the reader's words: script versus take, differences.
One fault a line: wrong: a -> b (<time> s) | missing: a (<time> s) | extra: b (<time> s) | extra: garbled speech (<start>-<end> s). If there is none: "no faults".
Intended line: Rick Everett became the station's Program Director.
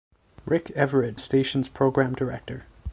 missing: became (1.2 s)